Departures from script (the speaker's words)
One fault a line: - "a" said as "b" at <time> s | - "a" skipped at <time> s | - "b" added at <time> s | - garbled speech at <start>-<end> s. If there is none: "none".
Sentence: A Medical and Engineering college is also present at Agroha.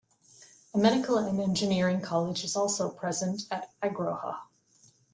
none